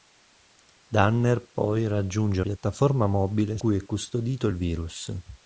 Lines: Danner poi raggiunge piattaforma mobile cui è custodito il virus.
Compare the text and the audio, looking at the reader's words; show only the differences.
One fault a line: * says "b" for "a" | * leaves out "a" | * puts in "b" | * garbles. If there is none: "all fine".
all fine